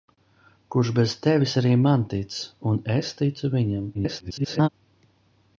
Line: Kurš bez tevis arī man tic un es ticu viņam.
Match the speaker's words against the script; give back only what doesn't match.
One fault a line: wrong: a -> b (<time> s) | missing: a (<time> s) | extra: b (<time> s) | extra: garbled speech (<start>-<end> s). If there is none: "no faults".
extra: garbled speech (3.9-4.7 s)